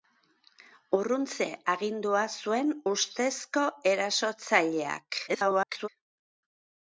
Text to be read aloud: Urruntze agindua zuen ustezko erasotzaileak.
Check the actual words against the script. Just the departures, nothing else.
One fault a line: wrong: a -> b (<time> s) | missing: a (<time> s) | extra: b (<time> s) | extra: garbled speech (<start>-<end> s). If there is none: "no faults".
extra: garbled speech (5.3-5.9 s)